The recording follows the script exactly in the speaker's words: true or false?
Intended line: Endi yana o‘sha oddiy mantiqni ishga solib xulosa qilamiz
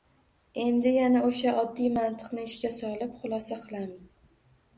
true